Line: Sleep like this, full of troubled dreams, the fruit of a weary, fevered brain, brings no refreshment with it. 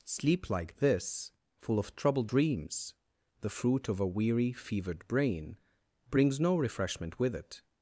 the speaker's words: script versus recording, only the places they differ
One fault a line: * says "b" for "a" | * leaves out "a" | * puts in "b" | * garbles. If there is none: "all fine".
all fine